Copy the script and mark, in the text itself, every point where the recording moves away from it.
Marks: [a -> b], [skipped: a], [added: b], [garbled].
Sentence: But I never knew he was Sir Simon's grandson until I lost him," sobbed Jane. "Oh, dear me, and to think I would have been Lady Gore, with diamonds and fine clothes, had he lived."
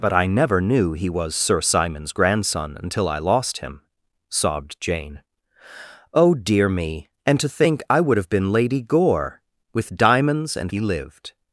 But I never knew he was Sir Simon's grandson until I lost him," sobbed Jane. "Oh, dear me, and to think I would have been Lady Gore, with diamonds and [skipped: fine clothes, had] he lived."